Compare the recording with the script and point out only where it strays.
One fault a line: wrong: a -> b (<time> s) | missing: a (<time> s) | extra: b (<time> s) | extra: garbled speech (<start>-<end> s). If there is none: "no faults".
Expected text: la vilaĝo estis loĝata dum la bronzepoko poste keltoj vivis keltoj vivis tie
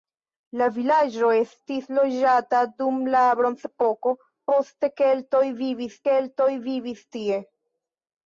no faults